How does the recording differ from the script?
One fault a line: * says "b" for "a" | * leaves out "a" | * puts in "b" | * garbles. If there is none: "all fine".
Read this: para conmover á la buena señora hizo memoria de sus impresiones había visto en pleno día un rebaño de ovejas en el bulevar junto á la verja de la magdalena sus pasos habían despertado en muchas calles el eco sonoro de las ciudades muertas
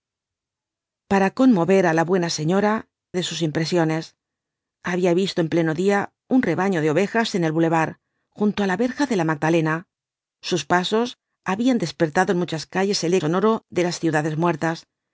* leaves out "hizo memoria"
* leaves out "eco"